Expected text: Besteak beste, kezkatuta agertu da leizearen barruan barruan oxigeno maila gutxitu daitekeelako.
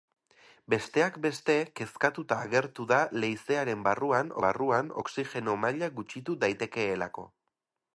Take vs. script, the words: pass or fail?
pass